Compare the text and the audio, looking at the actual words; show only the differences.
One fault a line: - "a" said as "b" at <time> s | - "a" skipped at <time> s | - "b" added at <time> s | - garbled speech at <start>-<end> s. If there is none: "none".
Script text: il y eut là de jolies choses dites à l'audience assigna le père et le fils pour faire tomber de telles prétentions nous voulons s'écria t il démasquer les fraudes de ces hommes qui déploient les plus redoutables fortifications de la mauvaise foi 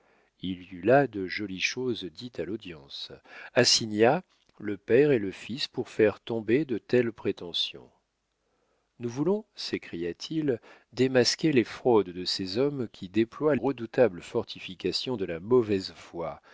- "les plus" skipped at 13.6 s